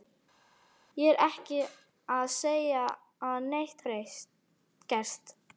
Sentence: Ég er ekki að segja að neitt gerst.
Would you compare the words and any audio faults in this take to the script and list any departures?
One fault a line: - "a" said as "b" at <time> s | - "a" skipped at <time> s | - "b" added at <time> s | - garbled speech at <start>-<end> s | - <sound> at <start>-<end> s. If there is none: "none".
none